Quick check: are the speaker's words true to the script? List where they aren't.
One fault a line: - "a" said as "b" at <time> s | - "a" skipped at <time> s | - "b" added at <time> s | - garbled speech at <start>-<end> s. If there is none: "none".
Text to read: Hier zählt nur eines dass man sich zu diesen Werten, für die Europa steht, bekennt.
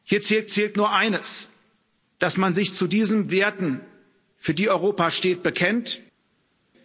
- "zählt" added at 0.5 s